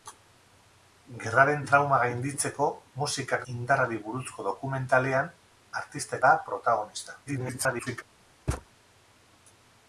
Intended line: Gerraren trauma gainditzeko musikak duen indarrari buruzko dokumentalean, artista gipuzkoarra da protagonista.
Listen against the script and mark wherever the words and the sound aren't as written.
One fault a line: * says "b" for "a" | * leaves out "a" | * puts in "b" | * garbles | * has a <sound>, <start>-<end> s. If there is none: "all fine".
* leaves out "duen"
* leaves out "gipuzkoarra"
* garbles
* has a thud, 8.5-8.7 s